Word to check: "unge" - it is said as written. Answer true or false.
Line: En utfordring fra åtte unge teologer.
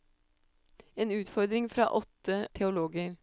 false